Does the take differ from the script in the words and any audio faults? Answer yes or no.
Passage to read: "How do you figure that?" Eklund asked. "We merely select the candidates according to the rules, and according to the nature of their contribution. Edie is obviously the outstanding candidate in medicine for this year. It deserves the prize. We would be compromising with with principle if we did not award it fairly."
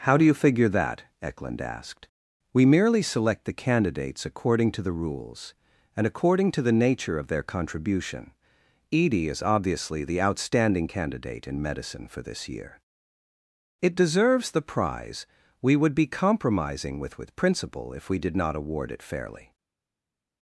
no